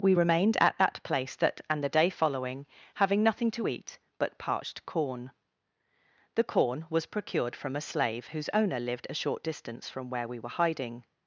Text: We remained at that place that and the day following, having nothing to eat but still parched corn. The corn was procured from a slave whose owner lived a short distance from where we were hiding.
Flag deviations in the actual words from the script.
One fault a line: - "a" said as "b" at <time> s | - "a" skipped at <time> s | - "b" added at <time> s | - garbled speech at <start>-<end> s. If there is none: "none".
- "still" skipped at 4.4 s